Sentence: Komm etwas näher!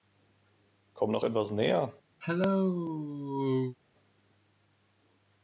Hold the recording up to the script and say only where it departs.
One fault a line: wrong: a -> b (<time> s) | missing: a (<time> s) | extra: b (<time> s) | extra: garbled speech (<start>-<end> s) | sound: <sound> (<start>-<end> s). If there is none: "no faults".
extra: noch (1.1 s)
sound: cough (2.2-3.8 s)